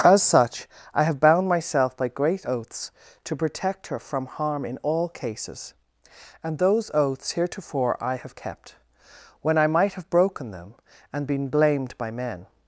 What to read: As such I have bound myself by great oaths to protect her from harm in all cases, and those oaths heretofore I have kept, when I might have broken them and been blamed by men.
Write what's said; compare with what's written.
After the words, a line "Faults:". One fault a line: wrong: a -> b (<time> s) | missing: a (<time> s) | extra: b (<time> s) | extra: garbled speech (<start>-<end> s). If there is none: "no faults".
As such I have bound myself by great oaths to protect her from harm in all cases, and those oaths heretofore I have kept, when I might have broken them and been blamed by men.
Faults:
no faults